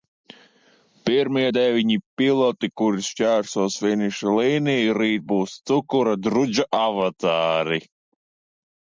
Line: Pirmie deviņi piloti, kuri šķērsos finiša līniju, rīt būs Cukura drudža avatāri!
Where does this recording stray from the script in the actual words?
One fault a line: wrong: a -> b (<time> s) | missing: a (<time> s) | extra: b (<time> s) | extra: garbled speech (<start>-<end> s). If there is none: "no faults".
no faults